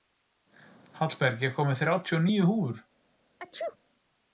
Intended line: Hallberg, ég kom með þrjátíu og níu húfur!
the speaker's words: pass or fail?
pass